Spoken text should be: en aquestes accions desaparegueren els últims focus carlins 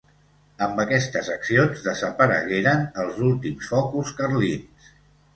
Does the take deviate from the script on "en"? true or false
true